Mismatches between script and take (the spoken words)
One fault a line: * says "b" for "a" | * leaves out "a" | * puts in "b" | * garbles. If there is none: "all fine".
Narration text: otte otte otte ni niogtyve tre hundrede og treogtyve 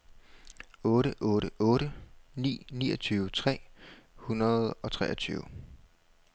all fine